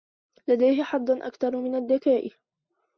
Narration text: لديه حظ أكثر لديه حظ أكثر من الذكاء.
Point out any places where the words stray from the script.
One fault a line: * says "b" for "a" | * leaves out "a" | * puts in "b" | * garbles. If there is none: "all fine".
* leaves out "لديه حظ أكثر"